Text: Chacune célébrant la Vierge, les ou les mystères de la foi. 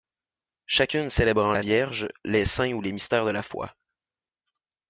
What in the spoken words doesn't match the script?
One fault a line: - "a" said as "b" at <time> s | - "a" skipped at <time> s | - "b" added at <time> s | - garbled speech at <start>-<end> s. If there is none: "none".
- "saints" added at 2.4 s